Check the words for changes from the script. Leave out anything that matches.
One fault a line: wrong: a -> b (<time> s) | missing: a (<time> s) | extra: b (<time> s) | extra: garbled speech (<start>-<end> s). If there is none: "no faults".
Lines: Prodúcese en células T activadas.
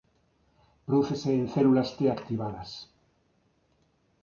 no faults